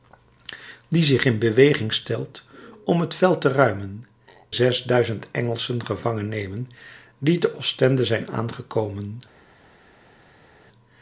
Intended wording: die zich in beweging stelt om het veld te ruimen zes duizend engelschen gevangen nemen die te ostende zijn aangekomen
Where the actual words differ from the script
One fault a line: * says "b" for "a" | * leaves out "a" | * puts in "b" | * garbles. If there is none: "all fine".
all fine